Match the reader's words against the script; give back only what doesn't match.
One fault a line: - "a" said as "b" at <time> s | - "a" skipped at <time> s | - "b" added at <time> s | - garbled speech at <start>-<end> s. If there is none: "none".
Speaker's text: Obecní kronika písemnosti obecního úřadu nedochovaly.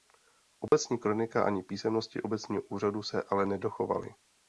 - "ani" added at 1.4 s
- "se ale" added at 3.0 s